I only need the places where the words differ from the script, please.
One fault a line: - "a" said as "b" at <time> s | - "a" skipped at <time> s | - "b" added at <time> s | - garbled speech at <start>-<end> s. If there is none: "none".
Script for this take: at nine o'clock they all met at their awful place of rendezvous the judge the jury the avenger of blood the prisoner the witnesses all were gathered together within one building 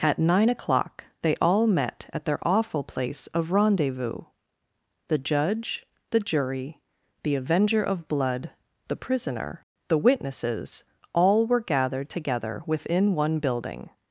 none